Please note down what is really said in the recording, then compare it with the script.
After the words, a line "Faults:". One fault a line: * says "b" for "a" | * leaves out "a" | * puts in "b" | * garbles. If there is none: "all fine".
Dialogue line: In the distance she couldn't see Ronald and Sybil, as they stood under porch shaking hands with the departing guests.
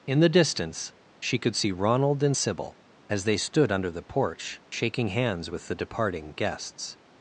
In the distance she could see Ronald and Sybil, as they stood under the porch shaking hands with the departing guests.
Faults:
* says "could" for "couldn't"
* puts in "the"